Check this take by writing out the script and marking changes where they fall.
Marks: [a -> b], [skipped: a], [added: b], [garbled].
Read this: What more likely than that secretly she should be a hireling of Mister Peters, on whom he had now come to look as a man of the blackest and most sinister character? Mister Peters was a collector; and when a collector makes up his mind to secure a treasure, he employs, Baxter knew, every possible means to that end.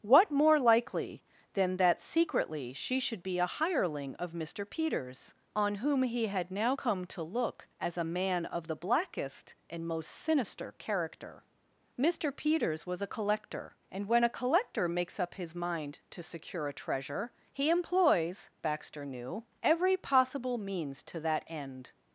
What more likely than that secretly she should be a hireling of Mister Peters, on whom he had now come to look as a man of the blackest and most sinister character? Mister Peters was a collector; and when a collector makes up his mind to secure a treasure, he employs, Baxter knew, every possible means to that end.